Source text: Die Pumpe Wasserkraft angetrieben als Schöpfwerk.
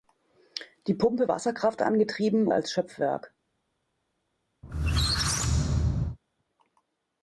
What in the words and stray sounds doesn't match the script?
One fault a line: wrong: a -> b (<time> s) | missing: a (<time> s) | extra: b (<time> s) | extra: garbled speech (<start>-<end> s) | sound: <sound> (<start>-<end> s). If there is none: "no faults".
sound: squeak (4.6-6.2 s)